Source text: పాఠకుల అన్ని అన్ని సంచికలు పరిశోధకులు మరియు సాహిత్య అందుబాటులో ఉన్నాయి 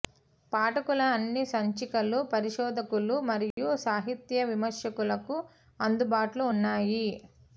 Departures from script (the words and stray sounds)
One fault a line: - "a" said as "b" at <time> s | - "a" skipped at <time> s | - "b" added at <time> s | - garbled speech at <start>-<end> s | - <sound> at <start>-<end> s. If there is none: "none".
- "అన్ని" skipped at 1.4 s
- dropout at 3.5-3.6 s
- "విమర్శకులకు" added at 4.5 s